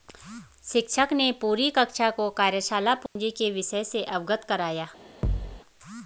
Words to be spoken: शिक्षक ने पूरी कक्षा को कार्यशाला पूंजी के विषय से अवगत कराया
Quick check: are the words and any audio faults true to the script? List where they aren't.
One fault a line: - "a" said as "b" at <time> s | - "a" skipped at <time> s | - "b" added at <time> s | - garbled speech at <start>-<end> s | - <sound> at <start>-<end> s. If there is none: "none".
- dropout at 3.1-3.2 s
- thud at 5.2-5.6 s